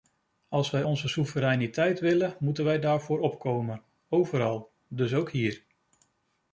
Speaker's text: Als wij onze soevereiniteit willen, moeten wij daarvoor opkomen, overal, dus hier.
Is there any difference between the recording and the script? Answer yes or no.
yes